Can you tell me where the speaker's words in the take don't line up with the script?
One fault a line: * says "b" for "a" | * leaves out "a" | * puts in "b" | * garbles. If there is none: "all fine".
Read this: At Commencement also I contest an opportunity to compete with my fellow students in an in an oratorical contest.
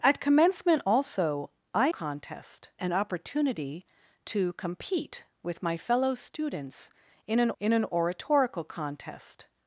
all fine